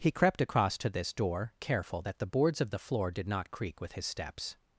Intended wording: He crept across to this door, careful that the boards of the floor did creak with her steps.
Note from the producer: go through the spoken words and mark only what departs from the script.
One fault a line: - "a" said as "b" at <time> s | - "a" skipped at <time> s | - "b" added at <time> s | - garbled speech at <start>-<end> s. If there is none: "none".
- "not" added at 3.3 s
- "her" said as "his" at 3.9 s